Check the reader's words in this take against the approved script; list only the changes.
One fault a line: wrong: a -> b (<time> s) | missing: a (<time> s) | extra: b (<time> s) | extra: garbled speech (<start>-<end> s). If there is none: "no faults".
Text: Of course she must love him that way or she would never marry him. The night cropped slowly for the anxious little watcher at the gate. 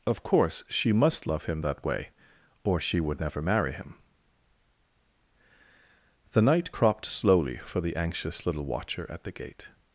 no faults